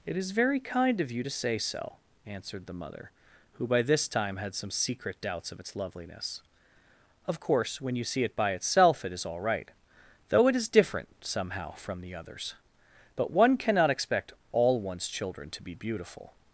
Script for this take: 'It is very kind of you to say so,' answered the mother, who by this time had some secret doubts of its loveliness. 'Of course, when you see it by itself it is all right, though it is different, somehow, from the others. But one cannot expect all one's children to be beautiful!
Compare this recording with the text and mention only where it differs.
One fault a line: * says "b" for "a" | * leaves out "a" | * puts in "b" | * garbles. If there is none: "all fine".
all fine